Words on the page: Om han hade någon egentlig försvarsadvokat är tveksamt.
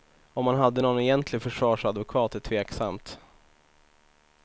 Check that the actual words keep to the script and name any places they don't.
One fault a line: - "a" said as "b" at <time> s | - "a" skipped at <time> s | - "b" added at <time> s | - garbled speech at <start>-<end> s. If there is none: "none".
none